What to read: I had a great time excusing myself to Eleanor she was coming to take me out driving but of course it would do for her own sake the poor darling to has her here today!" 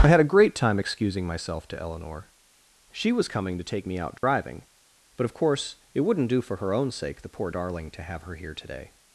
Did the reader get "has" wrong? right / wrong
wrong